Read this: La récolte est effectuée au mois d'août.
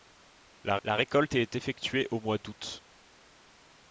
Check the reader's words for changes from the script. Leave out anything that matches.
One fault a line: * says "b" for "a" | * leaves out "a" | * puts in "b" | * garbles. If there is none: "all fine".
* puts in "la"